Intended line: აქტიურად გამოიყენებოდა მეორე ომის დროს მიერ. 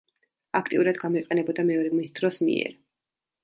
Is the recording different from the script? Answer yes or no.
no